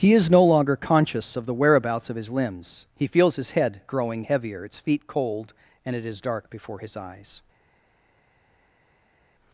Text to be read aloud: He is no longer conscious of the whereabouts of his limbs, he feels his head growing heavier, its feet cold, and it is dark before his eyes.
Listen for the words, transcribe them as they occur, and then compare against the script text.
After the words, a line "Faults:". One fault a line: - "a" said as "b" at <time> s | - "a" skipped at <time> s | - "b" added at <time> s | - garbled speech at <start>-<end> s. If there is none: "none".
He is no longer conscious of the whereabouts of his limbs, he feels his head growing heavier, its feet cold, and it is dark before his eyes.
Faults:
none